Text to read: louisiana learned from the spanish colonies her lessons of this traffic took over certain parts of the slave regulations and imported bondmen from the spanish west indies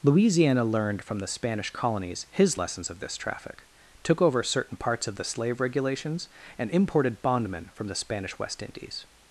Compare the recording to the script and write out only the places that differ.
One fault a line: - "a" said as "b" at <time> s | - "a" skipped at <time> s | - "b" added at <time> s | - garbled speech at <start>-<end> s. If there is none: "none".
- "her" said as "his" at 2.3 s